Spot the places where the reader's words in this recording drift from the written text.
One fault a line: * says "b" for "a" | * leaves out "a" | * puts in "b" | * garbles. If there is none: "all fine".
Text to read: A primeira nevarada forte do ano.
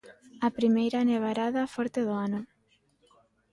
all fine